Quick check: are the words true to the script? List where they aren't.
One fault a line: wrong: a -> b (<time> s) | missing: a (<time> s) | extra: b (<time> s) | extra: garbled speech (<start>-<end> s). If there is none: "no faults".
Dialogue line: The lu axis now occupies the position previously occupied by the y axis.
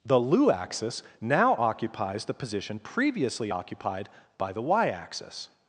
no faults